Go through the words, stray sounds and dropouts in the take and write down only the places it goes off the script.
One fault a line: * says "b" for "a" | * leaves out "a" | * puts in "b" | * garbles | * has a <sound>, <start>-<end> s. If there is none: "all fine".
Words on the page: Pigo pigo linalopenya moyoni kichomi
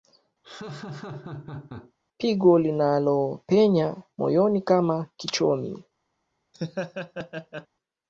* has a laugh, 0.4-1.9 s
* leaves out "pigo"
* puts in "kama"
* has a laugh, 6.5-7.7 s